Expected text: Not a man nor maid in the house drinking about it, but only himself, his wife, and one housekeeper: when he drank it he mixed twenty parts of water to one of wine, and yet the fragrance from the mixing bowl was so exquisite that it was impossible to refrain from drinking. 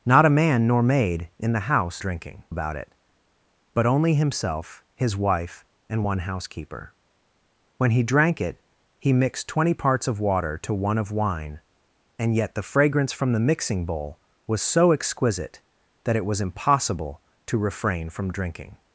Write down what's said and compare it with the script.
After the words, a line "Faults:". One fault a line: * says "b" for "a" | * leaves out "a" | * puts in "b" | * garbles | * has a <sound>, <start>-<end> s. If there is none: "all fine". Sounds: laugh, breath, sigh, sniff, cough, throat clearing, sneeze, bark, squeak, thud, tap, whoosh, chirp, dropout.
Not a man nor maid in the house drinking about it, but only himself, his wife, and one housekeeper: when he drank it he mixed twenty parts of water to one of wine, and yet the fragrance from the mixing bowl was so exquisite that it was impossible to refrain from drinking.
Faults:
all fine